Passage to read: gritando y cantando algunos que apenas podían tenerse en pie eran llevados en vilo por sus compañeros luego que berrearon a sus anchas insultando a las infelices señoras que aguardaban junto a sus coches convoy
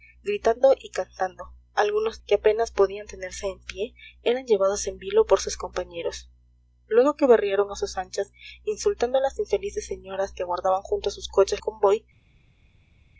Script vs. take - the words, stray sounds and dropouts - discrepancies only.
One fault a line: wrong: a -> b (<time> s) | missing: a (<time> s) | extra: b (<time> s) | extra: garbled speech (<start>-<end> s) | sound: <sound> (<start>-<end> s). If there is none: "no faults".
no faults